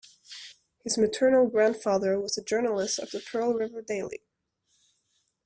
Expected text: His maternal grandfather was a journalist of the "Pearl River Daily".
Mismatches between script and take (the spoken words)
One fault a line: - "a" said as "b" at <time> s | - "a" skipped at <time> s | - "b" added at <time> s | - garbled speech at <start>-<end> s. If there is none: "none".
none